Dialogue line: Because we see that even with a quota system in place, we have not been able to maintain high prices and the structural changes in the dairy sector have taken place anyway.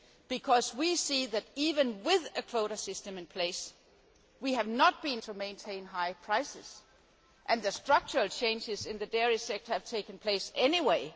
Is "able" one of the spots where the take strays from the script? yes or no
yes